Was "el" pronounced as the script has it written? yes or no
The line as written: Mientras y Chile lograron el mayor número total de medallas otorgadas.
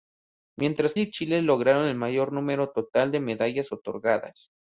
yes